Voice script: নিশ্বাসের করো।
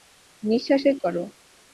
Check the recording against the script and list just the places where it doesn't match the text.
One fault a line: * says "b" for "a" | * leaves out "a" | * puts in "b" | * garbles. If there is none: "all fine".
all fine